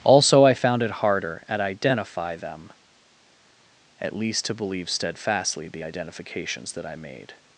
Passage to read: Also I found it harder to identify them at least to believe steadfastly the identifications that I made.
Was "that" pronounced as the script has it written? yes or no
yes